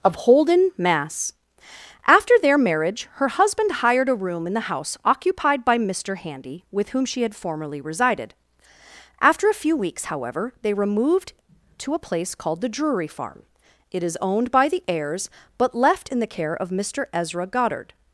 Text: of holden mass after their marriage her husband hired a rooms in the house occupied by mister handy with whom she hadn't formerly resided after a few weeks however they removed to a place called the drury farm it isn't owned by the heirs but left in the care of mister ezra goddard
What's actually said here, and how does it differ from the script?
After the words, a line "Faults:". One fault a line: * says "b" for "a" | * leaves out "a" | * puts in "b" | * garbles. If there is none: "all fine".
of holden mass after their marriage her husband hired a room in the house occupied by mister handy with whom she had formerly resided after a few weeks however they removed to a place called the drury farm it is owned by the heirs but left in the care of mister ezra goddard
Faults:
* says "room" for "rooms"
* says "had" for "hadn't"
* says "is" for "isn't"